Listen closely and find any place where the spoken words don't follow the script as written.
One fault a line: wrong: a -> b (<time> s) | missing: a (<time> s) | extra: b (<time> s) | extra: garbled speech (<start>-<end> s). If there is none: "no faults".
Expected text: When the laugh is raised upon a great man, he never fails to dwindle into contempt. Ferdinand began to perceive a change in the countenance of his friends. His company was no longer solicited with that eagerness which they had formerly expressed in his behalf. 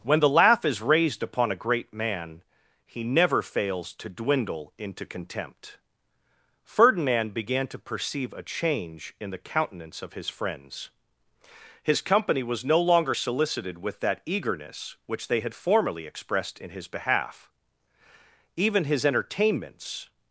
extra: Even his entertainments (18.5 s)